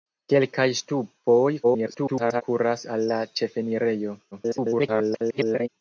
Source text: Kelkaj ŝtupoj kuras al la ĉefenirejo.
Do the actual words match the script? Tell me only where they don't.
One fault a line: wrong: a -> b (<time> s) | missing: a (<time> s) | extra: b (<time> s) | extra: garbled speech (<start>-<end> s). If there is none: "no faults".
extra: garbled speech (1.6-2.4 s)
extra: garbled speech (4.3-5.7 s)